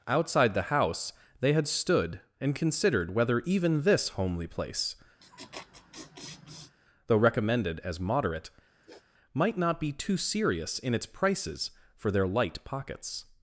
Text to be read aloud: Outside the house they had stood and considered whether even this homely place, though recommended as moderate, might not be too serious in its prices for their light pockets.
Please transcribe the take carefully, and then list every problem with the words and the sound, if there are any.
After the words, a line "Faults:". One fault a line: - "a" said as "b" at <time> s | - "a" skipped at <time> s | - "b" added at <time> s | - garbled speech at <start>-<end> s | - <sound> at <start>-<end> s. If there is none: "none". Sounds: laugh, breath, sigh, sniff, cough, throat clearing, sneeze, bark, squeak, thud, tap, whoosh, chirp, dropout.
Outside the house they had stood and considered whether even this homely place, though recommended as moderate, might not be too serious in its prices for their light pockets.
Faults:
- laugh at 5.2-6.8 s
- sniff at 8.8-9.1 s